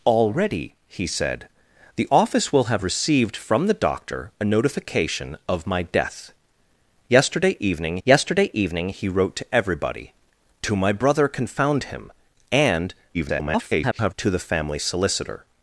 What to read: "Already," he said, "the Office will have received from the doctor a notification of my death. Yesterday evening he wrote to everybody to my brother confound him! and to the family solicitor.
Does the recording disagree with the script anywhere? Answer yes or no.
yes